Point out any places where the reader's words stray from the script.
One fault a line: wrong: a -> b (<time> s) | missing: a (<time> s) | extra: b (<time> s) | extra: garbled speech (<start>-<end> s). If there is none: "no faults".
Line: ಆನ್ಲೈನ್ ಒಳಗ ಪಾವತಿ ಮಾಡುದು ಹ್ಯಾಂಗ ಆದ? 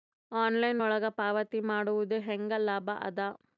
extra: ಲಾಭ (2.6 s)